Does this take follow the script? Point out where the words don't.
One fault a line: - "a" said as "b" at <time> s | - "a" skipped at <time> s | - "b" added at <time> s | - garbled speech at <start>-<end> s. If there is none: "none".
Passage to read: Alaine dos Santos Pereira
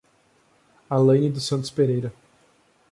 none